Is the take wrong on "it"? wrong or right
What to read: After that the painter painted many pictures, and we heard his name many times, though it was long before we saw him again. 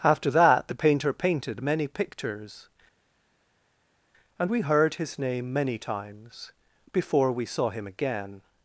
wrong